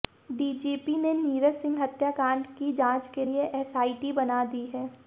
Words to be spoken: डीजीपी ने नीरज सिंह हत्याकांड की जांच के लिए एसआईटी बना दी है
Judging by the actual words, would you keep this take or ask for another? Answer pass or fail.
pass